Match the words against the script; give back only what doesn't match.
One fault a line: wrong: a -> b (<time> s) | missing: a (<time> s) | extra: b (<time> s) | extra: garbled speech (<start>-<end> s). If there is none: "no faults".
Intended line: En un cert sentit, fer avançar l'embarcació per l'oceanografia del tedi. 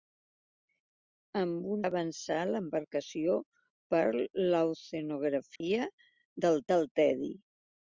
missing: cert sentit fer (1.8 s)
extra: del (6.7 s)